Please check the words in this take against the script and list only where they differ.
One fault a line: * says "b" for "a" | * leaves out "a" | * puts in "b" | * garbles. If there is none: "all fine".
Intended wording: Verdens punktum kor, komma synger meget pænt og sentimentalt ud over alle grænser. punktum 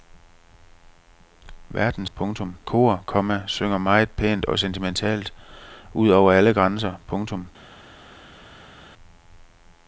all fine